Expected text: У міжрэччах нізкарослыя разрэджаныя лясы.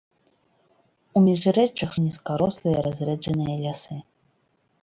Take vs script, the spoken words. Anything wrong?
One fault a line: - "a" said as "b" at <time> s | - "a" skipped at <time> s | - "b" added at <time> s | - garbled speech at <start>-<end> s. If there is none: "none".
none